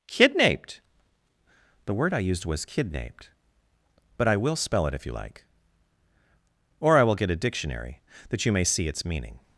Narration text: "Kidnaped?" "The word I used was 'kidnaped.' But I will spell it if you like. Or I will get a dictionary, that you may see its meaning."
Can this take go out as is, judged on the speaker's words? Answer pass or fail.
pass